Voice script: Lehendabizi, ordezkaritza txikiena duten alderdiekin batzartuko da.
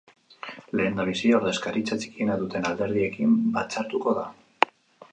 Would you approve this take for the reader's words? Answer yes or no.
yes